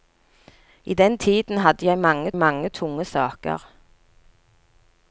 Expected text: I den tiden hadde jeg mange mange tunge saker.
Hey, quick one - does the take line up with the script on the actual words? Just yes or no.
yes